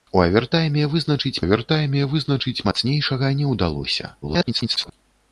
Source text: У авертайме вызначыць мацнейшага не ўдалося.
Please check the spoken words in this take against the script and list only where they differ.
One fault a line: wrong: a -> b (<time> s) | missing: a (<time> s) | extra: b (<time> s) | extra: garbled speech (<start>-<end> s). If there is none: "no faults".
extra: авертайме вызначыць (1.4 s)
extra: garbled speech (4.2-4.9 s)